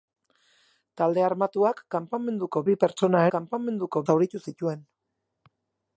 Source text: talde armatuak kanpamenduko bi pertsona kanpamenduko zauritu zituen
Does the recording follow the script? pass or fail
pass